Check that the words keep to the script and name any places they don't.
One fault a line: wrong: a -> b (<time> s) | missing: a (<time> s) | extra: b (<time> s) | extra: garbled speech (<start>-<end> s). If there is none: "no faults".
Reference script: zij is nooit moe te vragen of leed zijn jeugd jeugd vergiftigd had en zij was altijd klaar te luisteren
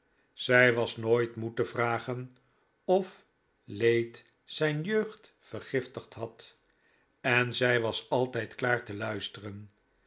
wrong: is -> was (0.7 s)
missing: jeugd (5.3 s)